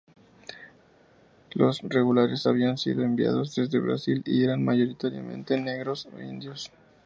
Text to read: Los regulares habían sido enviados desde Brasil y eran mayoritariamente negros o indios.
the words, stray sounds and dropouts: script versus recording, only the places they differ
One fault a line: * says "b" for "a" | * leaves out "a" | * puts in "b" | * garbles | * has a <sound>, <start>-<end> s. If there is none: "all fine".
all fine